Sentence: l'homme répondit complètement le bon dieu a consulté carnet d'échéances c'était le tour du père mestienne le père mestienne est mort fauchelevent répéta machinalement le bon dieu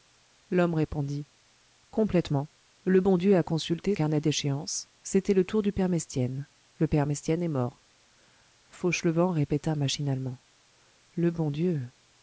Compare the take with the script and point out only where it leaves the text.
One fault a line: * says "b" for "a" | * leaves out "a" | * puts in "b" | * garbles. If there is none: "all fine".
all fine